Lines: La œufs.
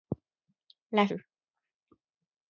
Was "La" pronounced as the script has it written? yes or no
yes